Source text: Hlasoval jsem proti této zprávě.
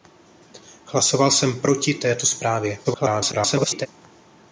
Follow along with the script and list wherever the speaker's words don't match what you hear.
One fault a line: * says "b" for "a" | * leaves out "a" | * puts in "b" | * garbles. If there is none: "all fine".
* garbles